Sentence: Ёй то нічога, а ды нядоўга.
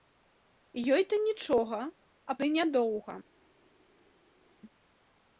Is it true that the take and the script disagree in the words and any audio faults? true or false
false